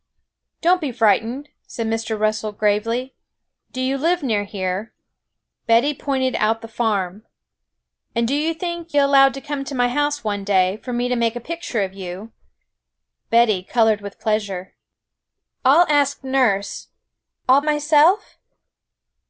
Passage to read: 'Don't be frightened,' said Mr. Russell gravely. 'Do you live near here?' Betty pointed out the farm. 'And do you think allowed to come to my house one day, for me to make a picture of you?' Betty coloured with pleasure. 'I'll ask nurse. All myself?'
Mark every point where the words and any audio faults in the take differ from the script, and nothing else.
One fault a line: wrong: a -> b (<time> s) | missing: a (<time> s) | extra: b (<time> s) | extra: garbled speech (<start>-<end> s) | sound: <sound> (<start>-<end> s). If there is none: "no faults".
no faults